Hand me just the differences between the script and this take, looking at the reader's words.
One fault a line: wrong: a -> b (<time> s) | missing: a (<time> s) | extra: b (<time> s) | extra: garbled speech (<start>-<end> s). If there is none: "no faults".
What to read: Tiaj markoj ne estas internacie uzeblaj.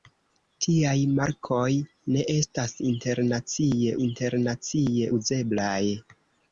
extra: internacie (4.1 s)